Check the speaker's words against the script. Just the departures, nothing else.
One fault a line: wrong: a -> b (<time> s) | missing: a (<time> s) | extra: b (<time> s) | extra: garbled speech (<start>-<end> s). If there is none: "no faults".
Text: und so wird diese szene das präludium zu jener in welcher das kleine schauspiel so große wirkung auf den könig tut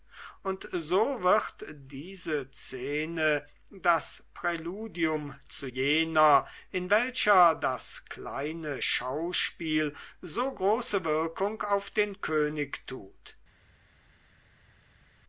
no faults